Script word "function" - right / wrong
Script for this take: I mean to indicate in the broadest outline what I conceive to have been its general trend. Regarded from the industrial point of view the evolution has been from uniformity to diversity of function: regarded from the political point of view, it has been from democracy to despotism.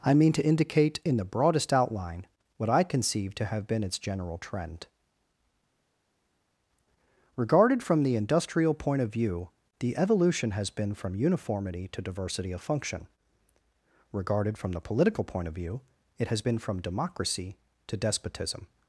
right